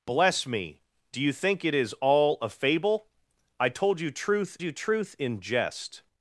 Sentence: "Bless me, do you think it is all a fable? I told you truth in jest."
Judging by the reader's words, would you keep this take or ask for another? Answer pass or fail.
fail